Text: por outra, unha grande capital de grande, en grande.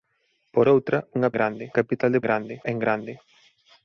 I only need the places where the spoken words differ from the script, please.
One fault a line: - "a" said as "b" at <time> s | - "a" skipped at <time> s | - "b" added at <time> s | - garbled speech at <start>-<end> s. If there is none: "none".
none